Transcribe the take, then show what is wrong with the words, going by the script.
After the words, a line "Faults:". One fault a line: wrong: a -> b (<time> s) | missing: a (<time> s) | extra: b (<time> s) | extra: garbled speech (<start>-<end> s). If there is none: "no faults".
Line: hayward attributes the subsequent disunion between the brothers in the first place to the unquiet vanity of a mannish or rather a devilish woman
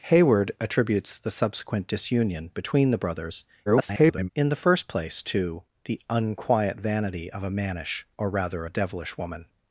hayward attributes the subsequent disunion between the brothers [garbled] in the first place to the unquiet vanity of a mannish or rather a devilish woman
Faults:
extra: garbled speech (3.7-4.3 s)